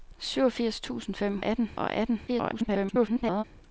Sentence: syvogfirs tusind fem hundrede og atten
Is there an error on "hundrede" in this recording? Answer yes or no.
yes